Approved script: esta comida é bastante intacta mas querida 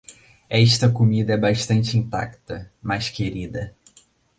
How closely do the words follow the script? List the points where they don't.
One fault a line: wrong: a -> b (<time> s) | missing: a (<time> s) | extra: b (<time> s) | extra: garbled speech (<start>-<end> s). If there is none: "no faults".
no faults